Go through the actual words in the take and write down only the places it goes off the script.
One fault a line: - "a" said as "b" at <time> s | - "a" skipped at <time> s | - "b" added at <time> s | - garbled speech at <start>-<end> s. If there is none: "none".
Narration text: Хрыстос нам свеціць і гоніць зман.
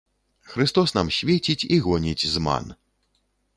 none